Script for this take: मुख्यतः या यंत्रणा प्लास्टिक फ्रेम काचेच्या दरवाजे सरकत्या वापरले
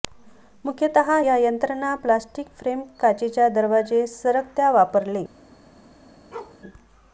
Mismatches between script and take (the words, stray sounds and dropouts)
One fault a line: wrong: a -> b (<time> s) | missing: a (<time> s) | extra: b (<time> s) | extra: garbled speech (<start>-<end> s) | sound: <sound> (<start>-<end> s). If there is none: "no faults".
sound: bark (6.3-6.6 s)